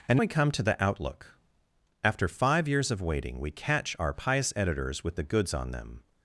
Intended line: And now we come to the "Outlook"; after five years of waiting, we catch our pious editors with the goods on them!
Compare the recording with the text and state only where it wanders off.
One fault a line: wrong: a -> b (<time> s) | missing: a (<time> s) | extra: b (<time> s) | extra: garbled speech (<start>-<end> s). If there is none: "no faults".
missing: now (0.2 s)